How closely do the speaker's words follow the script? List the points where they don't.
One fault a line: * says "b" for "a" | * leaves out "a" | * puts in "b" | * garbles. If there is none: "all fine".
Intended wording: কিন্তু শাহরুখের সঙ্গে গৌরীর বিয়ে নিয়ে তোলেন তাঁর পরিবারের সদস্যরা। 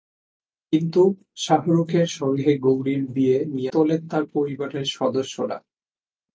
all fine